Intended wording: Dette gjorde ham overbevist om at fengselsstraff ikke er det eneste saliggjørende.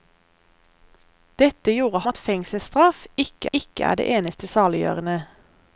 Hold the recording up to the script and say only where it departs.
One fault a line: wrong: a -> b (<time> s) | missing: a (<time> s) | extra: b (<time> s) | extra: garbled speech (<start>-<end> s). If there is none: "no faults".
missing: ham overbevist om (2.0 s)
extra: ikke (3.5 s)